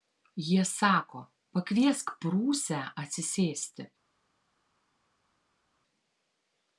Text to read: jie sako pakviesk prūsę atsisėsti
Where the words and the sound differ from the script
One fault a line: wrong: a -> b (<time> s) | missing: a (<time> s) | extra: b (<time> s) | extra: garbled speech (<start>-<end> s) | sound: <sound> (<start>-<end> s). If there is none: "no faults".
no faults